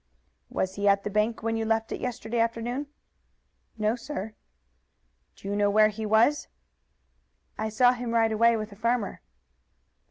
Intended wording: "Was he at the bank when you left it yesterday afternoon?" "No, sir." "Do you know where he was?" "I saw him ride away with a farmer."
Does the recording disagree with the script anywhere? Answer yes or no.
no